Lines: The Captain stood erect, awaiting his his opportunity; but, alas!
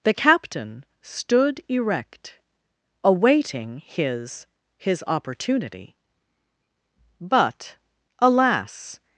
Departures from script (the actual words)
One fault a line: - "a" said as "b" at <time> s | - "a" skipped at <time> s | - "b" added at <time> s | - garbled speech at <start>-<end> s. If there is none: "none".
none